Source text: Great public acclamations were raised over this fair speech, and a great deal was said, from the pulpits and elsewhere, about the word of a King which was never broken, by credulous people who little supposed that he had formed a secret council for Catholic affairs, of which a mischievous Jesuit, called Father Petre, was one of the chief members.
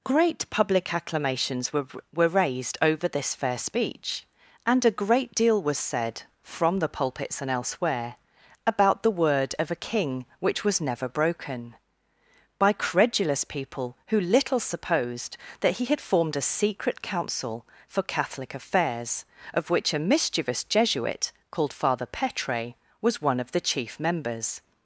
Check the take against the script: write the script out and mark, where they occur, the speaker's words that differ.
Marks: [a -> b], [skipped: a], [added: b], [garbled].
Great public acclamations were [added: were] raised over this fair speech, and a great deal was said, from the pulpits and elsewhere, about the word of a King which was never broken, by credulous people who little supposed that he had formed a secret council for Catholic affairs, of which a mischievous Jesuit, called Father Petre, was one of the chief members.